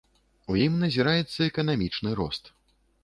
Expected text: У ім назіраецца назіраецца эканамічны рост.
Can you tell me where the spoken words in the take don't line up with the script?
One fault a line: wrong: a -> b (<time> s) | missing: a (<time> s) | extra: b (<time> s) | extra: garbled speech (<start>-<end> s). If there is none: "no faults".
missing: назіраецца (1.4 s)